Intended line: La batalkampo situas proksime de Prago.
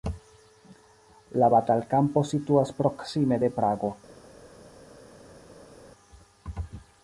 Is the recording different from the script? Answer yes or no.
no